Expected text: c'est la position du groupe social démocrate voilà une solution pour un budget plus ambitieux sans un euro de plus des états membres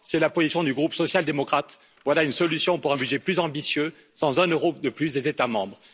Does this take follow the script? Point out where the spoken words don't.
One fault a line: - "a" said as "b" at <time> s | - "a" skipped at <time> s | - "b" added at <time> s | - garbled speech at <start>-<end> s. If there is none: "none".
none